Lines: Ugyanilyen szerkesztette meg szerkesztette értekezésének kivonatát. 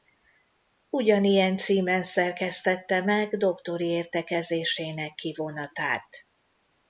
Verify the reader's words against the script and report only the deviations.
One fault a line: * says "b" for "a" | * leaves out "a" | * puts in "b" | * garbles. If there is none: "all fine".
* puts in "címen"
* says "doktori" for "szerkesztette"